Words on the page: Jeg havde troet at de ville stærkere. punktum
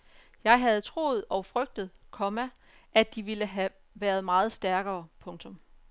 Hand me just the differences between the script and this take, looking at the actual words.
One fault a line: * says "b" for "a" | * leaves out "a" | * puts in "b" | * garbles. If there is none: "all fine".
* puts in "og frygtet komma"
* puts in "have været meget"